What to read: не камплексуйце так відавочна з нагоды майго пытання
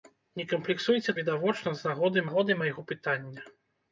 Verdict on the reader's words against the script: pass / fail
fail